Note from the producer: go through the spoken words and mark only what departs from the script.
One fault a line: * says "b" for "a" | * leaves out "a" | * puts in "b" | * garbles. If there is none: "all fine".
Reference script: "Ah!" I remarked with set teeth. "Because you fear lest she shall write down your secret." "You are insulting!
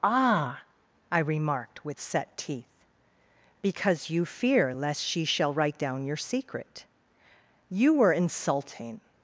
* says "were" for "are"